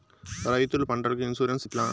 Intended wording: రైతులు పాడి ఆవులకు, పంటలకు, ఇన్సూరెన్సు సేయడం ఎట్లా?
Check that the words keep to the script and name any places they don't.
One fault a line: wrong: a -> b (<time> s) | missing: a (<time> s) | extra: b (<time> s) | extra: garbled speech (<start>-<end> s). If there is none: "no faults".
missing: పాడి ఆవులకు (0.9 s)
missing: సేయడం (1.7 s)